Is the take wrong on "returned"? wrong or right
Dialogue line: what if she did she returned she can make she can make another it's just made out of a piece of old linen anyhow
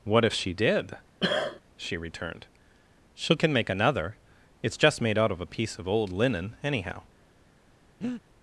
right